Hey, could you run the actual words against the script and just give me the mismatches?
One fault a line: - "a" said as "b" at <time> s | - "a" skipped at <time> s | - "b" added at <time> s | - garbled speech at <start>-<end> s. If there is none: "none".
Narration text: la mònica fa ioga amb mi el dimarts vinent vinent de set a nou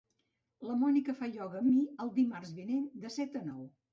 - "vinent" skipped at 2.9 s